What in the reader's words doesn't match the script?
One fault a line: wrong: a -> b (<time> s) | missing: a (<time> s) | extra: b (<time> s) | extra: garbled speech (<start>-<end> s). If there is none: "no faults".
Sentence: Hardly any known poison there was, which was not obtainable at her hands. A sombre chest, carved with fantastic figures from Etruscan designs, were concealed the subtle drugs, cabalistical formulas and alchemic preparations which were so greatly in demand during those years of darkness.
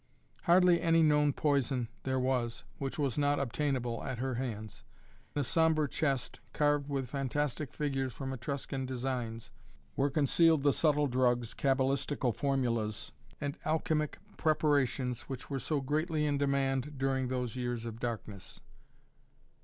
no faults